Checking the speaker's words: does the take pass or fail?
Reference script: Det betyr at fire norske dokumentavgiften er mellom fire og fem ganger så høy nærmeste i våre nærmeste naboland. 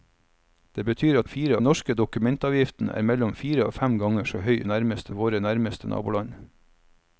pass